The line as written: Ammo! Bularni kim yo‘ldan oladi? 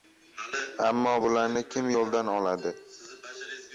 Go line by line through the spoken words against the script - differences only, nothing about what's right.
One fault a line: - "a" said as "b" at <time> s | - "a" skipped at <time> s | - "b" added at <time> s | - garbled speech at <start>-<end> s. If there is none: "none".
none